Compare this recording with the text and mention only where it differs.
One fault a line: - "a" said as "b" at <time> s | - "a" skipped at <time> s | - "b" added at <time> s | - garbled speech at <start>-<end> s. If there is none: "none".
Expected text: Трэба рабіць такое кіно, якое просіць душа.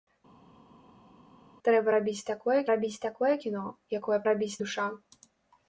- "рабіць такое" added at 2.7 s
- "просіць" said as "рабіць" at 4.3 s